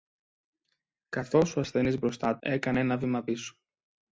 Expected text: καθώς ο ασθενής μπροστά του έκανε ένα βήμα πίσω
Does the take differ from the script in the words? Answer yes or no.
yes